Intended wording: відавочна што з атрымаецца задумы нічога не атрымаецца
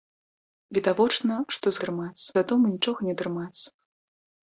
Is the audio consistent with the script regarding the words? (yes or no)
yes